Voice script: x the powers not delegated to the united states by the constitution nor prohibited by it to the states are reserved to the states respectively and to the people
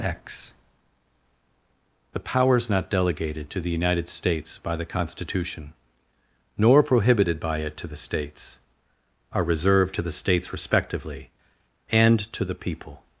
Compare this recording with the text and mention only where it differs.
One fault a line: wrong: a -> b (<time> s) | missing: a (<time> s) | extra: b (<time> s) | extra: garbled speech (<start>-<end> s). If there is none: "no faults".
no faults